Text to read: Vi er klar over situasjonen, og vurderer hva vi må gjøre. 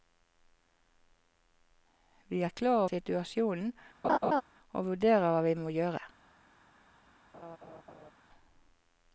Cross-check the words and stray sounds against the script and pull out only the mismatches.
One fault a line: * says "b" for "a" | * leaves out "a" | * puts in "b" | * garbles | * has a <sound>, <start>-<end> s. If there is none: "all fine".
* leaves out "over"
* has a laugh, 4.0-4.4 s
* has a laugh, 7.3-8.1 s